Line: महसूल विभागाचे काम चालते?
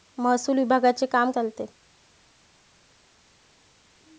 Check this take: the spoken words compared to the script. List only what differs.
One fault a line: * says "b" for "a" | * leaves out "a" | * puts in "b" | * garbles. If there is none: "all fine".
all fine